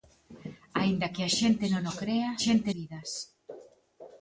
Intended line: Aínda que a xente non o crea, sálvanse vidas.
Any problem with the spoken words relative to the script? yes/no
yes